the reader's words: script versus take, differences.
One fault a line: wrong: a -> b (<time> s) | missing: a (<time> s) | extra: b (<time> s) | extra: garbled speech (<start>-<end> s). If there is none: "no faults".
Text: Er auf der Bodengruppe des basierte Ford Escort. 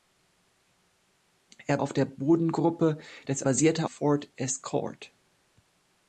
no faults